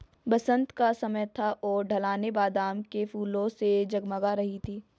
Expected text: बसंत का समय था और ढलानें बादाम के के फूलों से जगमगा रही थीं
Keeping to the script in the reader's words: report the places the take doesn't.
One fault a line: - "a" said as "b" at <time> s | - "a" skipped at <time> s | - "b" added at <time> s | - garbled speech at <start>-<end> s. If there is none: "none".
- "के" skipped at 3.0 s